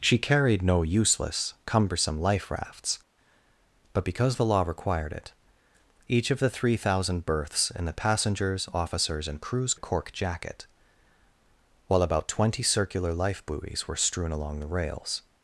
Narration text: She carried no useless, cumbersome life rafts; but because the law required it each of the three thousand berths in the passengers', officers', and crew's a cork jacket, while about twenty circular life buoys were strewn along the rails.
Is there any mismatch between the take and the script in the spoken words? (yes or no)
no